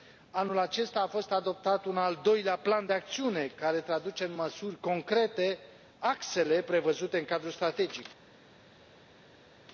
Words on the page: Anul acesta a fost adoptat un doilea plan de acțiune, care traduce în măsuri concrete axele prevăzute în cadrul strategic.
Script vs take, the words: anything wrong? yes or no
yes